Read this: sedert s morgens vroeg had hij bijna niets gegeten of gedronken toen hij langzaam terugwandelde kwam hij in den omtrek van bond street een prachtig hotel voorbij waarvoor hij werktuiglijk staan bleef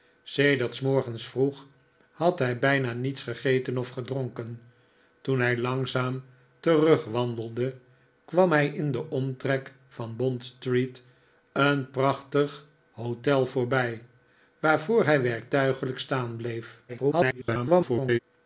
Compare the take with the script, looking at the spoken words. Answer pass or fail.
fail